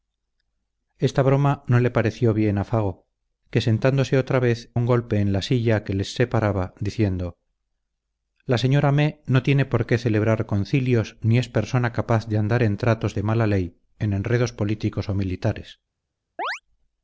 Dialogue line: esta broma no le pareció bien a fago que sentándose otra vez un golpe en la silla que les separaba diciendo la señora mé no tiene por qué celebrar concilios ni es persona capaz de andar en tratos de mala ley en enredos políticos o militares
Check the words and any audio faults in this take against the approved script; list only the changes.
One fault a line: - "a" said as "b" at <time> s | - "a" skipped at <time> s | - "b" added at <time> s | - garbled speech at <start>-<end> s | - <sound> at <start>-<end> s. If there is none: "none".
- chirp at 16.4-16.6 s